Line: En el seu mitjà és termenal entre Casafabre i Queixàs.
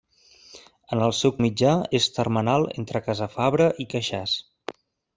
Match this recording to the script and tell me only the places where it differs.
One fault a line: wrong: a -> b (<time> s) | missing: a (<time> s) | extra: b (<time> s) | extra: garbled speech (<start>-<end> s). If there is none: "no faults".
no faults